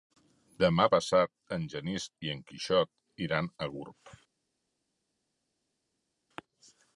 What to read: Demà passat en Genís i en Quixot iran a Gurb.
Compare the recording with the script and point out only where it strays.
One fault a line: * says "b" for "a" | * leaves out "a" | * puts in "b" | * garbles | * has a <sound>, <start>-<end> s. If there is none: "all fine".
all fine